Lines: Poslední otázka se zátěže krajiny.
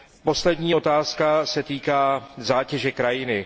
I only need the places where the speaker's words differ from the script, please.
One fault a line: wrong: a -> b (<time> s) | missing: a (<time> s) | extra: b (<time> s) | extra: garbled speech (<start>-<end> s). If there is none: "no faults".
extra: týká (1.6 s)